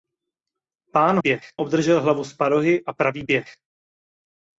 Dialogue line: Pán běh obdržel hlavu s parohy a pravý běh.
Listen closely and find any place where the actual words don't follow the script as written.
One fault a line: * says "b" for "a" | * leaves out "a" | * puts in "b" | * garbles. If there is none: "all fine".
all fine